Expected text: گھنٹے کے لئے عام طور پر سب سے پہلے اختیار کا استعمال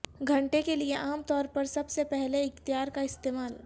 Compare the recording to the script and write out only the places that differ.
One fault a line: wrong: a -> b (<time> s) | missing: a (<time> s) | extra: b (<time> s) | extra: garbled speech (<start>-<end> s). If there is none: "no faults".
no faults